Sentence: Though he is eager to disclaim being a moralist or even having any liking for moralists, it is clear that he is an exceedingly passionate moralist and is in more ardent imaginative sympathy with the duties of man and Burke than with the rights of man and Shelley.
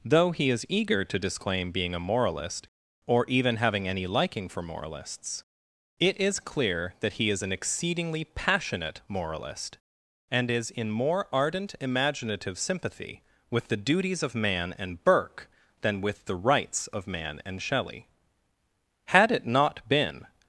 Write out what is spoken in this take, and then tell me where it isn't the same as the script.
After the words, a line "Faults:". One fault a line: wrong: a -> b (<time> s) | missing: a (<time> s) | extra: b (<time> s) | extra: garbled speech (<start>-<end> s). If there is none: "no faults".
Though he is eager to disclaim being a moralist or even having any liking for moralists, it is clear that he is an exceedingly passionate moralist and is in more ardent imaginative sympathy with the duties of man and Burke than with the rights of man and Shelley. Had it not been
Faults:
extra: Had it not been (19.1 s)